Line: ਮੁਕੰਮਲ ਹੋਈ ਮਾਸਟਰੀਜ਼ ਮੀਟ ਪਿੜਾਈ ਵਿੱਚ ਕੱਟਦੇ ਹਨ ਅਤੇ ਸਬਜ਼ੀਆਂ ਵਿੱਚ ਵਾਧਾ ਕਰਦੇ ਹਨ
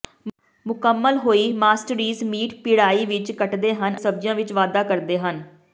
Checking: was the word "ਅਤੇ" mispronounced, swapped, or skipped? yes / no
yes